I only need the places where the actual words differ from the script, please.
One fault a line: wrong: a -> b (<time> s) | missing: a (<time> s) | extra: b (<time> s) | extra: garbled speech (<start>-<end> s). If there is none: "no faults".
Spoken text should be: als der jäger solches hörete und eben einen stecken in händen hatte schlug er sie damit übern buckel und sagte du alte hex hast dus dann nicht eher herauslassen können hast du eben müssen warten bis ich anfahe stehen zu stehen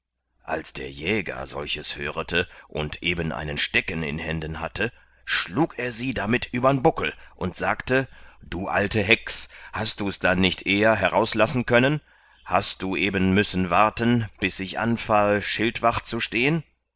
wrong: stehen -> schildwacht (15.4 s)